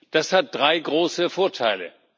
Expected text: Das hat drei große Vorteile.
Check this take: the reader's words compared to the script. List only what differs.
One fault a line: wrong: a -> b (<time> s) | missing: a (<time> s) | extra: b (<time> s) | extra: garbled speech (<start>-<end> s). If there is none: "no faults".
no faults